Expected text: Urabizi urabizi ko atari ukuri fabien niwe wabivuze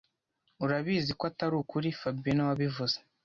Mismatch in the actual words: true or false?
true